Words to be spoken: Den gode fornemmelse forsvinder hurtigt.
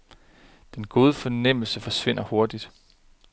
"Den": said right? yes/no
yes